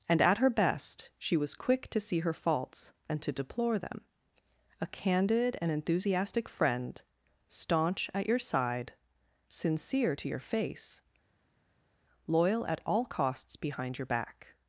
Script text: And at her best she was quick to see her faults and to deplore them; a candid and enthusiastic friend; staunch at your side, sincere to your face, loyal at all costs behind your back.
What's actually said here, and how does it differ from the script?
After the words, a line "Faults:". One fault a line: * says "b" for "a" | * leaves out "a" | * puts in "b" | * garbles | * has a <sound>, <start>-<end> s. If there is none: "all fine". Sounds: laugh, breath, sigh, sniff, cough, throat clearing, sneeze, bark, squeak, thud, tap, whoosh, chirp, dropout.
And at her best she was quick to see her faults and to deplore them; a candid and enthusiastic friend; staunch at your side, sincere to your face, loyal at all costs behind your back.
Faults:
all fine